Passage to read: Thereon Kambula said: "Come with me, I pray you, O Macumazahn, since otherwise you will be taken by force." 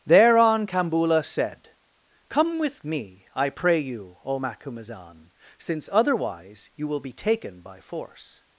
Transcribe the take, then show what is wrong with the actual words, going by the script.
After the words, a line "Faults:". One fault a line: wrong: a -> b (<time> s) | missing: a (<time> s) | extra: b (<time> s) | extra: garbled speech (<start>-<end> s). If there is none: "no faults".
Thereon Kambula said: "Come with me, I pray you, O Macumazahn, since otherwise you will be taken by force."
Faults:
no faults